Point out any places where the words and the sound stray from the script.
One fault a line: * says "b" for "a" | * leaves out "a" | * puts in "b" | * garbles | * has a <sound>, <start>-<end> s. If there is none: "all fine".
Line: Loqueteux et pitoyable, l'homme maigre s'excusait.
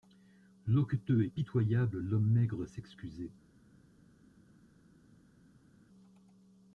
all fine